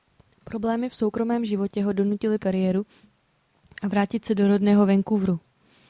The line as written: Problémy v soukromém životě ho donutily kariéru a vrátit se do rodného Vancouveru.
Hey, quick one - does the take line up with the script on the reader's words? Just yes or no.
yes